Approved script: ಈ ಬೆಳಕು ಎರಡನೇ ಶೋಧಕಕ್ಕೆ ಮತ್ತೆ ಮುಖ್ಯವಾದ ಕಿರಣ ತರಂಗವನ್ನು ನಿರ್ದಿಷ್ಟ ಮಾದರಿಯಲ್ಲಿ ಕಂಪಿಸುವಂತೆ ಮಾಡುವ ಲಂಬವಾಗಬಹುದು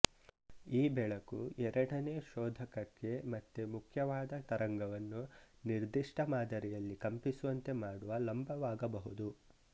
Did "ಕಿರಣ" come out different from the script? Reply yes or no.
yes